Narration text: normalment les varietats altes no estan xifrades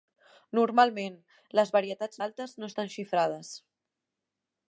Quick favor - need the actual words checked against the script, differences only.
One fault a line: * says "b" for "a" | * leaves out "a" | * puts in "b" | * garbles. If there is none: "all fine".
all fine